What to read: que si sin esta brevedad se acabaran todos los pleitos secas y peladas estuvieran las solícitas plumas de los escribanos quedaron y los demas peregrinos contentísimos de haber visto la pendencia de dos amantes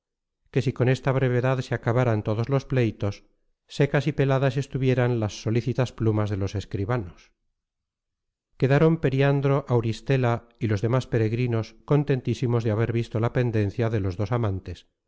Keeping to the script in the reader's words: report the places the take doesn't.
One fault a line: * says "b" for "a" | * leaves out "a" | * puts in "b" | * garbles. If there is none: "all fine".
* says "con" for "sin"
* puts in "periandro auristela"
* puts in "los"